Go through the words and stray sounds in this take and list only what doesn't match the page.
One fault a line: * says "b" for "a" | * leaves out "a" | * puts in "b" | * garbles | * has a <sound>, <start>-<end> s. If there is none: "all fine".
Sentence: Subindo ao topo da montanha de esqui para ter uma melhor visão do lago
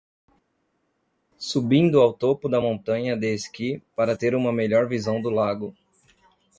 all fine